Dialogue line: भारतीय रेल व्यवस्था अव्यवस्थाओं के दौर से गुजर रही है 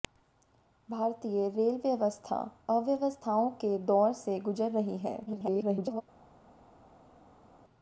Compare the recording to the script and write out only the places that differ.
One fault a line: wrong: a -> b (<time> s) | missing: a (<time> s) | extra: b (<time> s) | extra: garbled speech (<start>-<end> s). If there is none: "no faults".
extra: garbled speech (5.3-6.0 s)